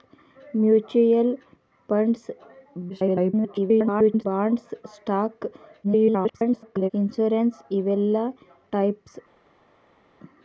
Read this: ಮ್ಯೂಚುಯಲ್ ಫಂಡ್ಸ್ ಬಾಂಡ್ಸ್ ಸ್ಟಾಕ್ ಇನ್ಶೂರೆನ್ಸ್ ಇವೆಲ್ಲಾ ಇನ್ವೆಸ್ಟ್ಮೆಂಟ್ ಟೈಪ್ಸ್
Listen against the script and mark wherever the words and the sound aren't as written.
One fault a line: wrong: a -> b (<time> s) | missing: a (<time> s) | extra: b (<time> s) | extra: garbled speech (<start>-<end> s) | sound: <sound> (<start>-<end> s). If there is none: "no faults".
extra: garbled speech (2.9-4.3 s)
extra: garbled speech (5.8-6.9 s)
missing: ಇನ್ವೆಸ್ಟ್ಮೆಂಟ್ (8.2 s)